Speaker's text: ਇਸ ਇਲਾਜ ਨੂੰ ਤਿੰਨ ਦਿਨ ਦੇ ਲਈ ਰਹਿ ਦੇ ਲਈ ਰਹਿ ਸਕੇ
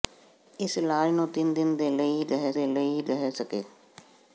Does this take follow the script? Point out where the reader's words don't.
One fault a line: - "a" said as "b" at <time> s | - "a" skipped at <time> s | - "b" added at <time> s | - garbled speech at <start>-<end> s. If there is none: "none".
none